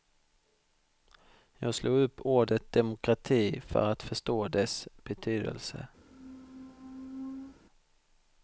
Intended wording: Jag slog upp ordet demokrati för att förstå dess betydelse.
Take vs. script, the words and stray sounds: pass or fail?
fail